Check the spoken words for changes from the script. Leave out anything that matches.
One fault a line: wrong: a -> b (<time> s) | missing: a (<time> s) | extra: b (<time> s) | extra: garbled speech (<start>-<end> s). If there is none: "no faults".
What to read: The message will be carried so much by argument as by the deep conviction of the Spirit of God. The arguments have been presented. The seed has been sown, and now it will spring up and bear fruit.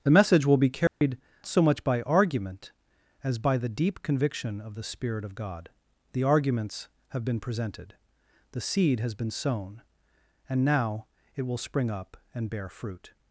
no faults